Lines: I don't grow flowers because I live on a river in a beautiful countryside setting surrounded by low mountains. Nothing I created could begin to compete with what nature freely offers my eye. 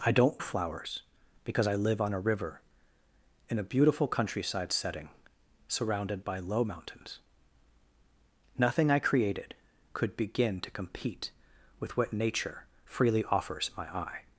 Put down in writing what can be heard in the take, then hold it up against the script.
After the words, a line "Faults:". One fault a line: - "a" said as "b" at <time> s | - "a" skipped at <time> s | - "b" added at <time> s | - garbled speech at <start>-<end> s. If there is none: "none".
I don't flowers because I live on a river in a beautiful countryside setting surrounded by low mountains. Nothing I created could begin to compete with what nature freely offers my eye.
Faults:
- "grow" skipped at 0.4 s